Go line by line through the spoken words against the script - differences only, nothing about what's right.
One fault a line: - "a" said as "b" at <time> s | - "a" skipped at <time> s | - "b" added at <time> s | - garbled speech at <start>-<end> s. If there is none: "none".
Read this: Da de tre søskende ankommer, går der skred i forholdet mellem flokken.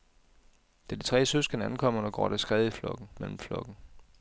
- "forholdet" said as "flokken" at 2.7 s